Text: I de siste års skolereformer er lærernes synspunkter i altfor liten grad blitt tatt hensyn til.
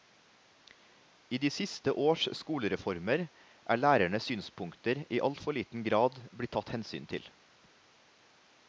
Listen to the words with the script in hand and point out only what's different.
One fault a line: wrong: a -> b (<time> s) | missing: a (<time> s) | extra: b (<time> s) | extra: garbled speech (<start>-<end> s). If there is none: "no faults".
no faults